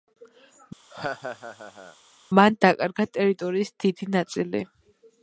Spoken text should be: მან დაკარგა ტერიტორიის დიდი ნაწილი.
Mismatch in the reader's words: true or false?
false